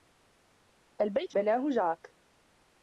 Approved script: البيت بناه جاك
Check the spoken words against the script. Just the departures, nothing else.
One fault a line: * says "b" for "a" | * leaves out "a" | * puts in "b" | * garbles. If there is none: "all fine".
all fine